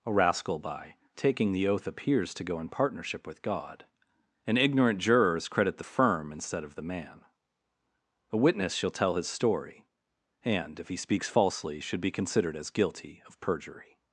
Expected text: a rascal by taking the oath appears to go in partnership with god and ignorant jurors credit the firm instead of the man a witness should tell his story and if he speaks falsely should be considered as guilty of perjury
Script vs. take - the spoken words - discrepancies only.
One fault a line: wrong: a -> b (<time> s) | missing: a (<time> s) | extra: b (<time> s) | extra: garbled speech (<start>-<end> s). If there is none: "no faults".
wrong: should -> shall (8.7 s)